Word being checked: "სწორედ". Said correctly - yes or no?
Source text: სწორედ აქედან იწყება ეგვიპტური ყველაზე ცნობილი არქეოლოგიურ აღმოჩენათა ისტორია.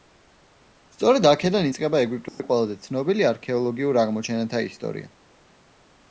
yes